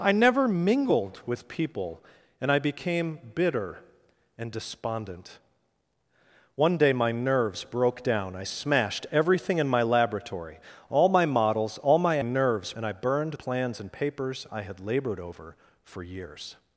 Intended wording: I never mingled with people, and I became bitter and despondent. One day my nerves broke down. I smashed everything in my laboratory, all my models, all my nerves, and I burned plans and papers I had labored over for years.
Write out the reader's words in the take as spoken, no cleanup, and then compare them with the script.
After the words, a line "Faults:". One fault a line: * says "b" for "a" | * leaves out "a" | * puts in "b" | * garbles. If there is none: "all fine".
I never mingled with people, and I became bitter and despondent. One day my nerves broke down. I smashed everything in my laboratory, all my models, all my nerves, and I burned plans and papers I had labored over for years.
Faults:
all fine